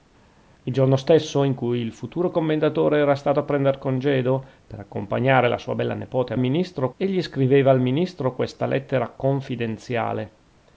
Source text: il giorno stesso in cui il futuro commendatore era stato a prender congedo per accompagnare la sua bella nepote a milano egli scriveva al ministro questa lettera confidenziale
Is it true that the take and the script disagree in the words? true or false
true